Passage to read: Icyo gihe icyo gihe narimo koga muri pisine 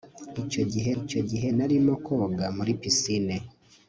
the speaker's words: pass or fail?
pass